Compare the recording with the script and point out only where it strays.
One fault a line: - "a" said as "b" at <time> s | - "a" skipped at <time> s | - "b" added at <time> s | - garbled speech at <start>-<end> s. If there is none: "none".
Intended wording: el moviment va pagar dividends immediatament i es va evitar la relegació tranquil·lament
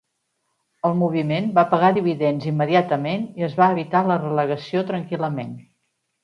none